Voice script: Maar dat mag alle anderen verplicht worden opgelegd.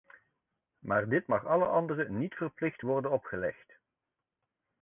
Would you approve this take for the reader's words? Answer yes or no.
no